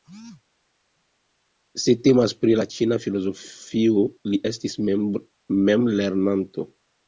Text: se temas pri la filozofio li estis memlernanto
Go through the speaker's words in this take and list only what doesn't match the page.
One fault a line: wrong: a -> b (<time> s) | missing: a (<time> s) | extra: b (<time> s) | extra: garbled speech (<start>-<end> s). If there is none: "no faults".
extra: ĉina (2.8 s)